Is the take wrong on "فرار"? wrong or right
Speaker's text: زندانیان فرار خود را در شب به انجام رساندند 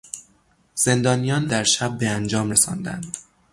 wrong